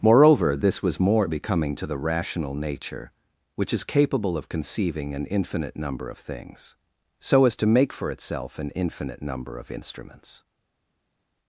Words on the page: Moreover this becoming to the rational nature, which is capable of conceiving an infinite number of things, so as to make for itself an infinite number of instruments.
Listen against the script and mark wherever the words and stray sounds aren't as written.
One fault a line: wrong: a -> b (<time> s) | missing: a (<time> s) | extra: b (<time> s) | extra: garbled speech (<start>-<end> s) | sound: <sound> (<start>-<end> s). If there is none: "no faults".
extra: was more (0.8 s)